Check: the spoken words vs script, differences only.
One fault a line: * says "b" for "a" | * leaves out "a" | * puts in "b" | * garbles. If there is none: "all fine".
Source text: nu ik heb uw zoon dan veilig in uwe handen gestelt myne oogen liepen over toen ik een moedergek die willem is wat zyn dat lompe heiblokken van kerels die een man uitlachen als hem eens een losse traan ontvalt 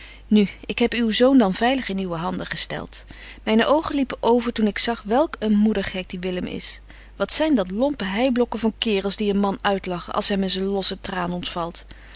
* puts in "zag welk"